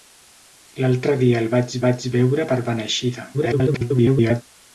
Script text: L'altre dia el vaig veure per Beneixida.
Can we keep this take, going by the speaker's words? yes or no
no